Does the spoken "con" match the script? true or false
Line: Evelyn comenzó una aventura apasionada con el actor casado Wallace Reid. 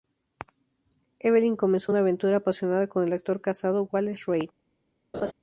true